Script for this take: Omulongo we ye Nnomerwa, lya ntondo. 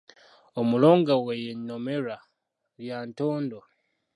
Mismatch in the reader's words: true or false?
false